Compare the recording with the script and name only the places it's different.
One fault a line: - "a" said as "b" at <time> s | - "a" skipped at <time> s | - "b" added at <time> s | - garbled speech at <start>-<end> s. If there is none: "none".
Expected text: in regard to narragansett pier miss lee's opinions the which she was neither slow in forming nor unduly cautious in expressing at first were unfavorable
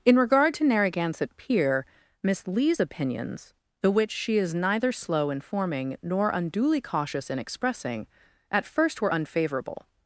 - "was" said as "is" at 4.4 s